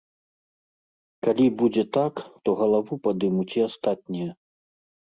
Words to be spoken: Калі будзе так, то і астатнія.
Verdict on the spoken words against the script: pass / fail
fail